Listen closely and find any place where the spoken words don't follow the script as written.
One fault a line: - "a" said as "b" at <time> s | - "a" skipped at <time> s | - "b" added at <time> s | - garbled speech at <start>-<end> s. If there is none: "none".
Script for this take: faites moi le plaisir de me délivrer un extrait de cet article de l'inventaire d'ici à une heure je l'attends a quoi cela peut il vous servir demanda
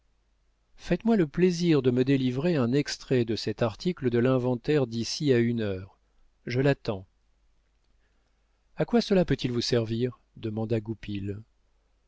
none